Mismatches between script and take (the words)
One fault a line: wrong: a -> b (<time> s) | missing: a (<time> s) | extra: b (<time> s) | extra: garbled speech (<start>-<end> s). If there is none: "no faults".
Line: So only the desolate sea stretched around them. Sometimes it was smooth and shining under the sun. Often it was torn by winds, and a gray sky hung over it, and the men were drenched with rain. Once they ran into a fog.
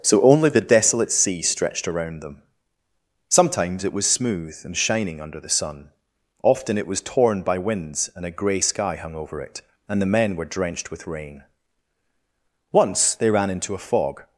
no faults